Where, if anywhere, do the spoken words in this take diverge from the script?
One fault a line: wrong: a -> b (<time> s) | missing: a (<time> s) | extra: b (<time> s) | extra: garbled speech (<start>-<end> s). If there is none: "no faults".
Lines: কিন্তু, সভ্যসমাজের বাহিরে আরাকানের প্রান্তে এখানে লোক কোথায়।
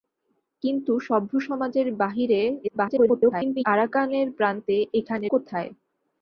extra: garbled speech (2.6-3.6 s)
missing: লোক (5.3 s)